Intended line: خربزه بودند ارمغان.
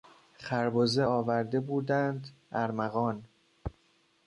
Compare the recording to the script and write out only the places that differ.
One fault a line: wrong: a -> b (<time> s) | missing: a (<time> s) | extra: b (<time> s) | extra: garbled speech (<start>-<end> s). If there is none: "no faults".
extra: آورده (1.0 s)